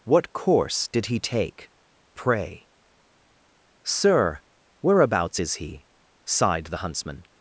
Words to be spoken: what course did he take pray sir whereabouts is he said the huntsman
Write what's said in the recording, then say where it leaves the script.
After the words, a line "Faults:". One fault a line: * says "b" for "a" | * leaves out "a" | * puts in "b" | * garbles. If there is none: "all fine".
what course did he take pray sir whereabouts is he sighed the huntsman
Faults:
* says "sighed" for "said"